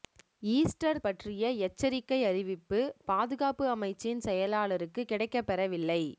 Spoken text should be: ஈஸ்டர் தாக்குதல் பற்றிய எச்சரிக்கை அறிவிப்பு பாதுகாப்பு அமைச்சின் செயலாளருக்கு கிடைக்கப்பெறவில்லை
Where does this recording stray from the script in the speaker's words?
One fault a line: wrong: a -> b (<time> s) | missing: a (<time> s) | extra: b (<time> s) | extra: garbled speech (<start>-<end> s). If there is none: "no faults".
missing: தாக்குதல் (1.0 s)